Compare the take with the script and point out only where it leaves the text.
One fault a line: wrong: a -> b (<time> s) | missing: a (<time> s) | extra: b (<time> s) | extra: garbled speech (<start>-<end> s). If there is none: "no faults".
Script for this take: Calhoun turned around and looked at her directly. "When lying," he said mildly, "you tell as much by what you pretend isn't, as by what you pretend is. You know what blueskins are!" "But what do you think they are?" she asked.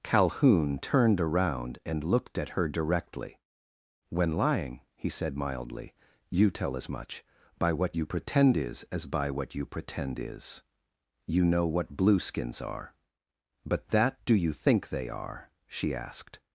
wrong: isn't -> is (8.6 s)
wrong: what -> that (13.9 s)